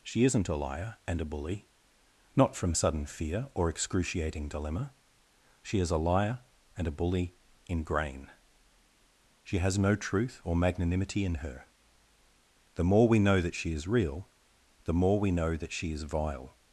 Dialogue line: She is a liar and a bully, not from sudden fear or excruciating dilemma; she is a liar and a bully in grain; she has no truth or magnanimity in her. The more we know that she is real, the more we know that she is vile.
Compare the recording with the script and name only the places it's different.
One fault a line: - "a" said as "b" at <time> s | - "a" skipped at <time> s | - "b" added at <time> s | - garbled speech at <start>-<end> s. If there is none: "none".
- "is" said as "isn't" at 0.2 s